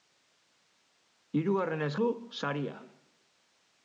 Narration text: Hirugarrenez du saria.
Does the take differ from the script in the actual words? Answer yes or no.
no